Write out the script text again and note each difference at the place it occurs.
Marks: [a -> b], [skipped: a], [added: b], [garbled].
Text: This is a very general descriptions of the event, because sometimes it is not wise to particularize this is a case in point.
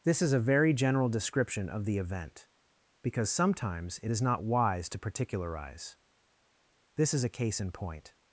This is a very general [descriptions -> description] of the event, because sometimes it is not wise to particularize this is a case in point.